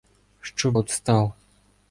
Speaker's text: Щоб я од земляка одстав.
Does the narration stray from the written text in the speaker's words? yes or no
yes